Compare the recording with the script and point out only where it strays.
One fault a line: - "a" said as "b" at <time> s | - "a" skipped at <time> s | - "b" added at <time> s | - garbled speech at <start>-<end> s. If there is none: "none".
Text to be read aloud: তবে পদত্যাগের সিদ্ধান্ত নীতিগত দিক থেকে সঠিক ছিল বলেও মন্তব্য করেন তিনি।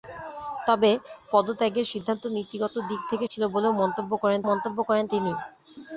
- "সঠিক" skipped at 3.2 s
- "মন্তব্য করেন" added at 4.5 s